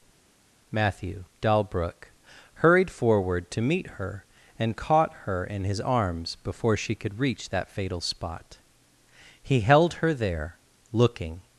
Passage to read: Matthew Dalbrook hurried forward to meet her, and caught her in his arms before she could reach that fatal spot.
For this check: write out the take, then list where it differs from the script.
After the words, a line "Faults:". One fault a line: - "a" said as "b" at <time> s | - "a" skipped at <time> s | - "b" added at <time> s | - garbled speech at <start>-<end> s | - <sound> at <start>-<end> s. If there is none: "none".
Matthew Dalbrook hurried forward to meet her, and caught her in his arms before she could reach that fatal spot. He held her there, looking
Faults:
- "He held her there looking" added at 9.4 s